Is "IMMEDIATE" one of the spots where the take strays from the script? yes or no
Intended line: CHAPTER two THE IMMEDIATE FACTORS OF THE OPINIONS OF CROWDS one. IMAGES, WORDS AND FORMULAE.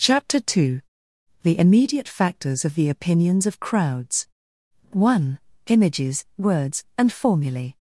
no